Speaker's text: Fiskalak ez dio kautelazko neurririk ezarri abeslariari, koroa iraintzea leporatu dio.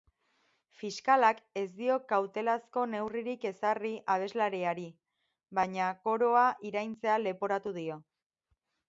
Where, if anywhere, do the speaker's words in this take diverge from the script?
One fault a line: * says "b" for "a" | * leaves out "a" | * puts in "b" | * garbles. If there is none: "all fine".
* puts in "baina"